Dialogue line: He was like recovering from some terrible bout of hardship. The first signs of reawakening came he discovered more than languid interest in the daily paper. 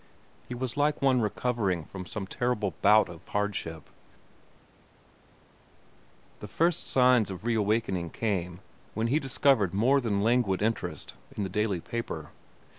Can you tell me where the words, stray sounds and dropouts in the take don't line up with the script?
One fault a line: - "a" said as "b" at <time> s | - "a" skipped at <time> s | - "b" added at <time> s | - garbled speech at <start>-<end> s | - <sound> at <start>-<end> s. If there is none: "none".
- "one" added at 1.0 s
- "when" added at 8.9 s